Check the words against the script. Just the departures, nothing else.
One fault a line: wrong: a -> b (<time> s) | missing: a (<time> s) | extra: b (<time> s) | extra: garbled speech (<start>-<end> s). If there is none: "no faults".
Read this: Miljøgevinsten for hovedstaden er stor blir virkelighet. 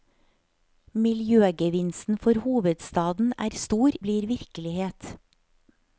no faults